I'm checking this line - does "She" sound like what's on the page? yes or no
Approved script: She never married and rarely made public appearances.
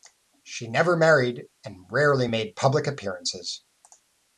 yes